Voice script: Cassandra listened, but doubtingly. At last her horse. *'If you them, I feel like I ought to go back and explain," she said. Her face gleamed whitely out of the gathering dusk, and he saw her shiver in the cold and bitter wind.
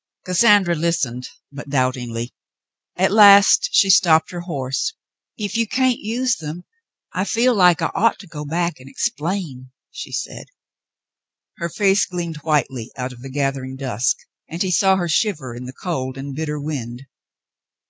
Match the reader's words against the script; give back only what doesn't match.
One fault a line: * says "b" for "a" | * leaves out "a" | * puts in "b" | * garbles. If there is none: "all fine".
* puts in "she stopped"
* puts in "can't use"